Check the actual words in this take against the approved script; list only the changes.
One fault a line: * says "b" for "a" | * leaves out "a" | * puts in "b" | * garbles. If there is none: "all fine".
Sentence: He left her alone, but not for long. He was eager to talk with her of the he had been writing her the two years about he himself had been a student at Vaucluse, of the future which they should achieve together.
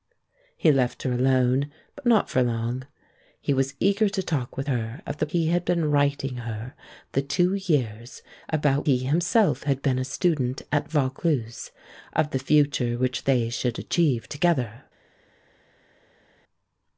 all fine